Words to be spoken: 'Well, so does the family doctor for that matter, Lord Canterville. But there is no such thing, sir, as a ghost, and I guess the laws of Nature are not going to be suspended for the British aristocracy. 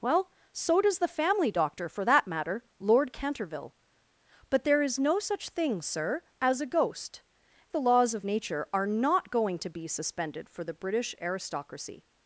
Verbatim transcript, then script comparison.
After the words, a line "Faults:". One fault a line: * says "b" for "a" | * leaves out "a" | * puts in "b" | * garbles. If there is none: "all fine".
'Well, so does the family doctor for that matter, Lord Canterville. But there is no such thing, sir, as a ghost, the laws of Nature are not going to be suspended for the British aristocracy.
Faults:
* leaves out "and I guess"